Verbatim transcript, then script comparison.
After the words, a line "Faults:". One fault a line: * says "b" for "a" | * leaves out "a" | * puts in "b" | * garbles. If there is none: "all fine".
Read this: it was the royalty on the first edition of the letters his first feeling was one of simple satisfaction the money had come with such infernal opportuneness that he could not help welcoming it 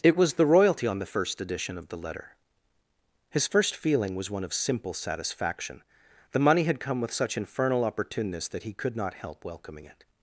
it was the royalty on the first edition of the letter his first feeling was one of simple satisfaction the money had come with such infernal opportuneness that he could not help welcoming it
Faults:
* says "letter" for "letters"